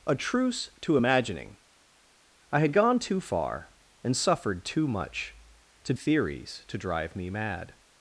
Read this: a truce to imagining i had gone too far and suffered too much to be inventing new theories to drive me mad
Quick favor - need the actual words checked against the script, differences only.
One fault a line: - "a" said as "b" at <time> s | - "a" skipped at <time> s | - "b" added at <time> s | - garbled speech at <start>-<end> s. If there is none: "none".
- "be inventing new" skipped at 5.9 s